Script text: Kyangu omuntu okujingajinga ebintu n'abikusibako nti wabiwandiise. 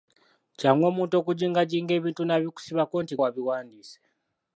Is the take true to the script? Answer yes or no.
yes